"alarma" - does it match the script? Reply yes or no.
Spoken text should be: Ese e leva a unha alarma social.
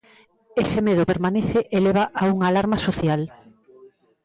yes